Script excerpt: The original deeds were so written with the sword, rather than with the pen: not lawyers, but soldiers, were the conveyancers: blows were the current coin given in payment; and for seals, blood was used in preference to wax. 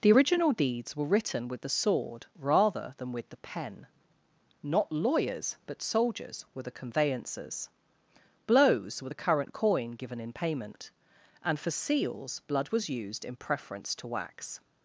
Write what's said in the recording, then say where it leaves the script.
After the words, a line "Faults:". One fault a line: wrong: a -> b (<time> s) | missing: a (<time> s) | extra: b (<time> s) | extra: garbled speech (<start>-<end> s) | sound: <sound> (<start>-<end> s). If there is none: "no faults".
The original deeds were written with the sword, rather than with the pen: not lawyers, but soldiers, were the conveyancers: blows were the current coin given in payment; and for seals, blood was used in preference to wax.
Faults:
missing: so (1.1 s)